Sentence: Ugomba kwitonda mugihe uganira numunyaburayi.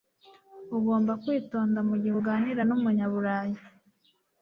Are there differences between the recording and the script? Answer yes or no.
no